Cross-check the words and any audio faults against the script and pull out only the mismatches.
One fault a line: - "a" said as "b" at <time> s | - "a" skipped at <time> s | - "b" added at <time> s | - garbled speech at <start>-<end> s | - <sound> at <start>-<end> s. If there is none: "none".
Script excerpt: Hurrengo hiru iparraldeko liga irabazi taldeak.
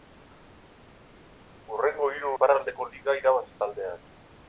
none